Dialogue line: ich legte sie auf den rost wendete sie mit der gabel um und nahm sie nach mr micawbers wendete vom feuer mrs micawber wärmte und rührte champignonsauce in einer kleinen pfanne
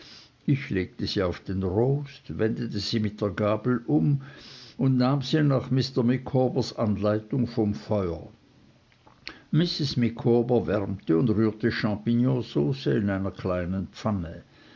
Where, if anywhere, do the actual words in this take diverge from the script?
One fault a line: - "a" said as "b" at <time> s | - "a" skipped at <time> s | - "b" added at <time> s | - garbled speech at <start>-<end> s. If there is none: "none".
- "wendete" said as "anleitung" at 6.8 s